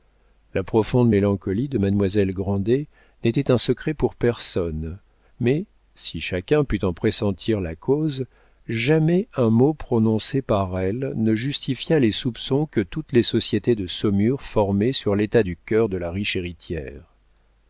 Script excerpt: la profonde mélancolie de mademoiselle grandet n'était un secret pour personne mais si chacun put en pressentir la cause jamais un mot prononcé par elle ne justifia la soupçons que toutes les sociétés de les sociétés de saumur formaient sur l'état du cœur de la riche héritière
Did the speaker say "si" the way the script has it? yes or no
yes